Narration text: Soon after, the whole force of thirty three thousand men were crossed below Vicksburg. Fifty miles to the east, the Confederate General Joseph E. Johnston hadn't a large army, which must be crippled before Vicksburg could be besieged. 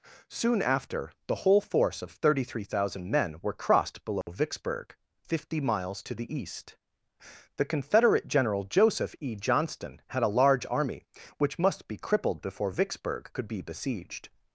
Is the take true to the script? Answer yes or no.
no